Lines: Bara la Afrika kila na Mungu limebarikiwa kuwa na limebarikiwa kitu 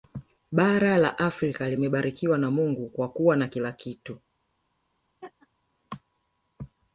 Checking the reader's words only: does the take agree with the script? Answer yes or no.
no